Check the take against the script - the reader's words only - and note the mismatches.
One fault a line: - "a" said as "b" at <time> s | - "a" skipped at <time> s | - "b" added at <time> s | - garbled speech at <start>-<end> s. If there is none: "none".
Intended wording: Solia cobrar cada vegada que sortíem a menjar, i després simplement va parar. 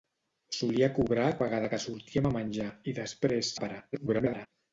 - "cada" skipped at 1.3 s
- "simplement" skipped at 3.6 s
- garbled speech at 3.9-4.5 s